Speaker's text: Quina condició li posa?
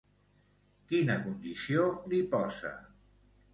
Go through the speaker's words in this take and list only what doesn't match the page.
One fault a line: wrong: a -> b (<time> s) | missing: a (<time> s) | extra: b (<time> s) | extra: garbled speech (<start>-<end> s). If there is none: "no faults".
no faults